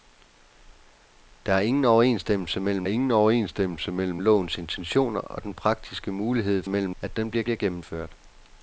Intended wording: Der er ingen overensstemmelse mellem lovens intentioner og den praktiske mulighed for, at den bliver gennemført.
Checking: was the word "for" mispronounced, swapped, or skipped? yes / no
yes